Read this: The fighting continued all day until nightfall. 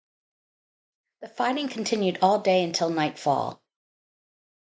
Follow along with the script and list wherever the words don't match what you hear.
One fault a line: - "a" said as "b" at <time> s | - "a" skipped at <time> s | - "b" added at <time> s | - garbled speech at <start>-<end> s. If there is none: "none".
none